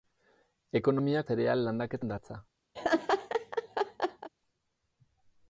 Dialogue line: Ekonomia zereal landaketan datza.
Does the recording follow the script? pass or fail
pass